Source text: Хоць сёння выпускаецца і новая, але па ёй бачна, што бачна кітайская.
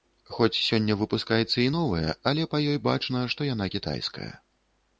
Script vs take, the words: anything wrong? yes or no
yes